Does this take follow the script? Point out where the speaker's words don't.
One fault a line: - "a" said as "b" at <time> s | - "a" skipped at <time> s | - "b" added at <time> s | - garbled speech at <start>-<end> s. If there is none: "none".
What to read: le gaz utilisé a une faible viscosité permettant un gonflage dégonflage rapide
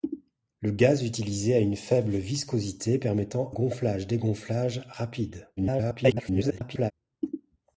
- "un" skipped at 3.5 s
- garbled speech at 5.6-6.9 s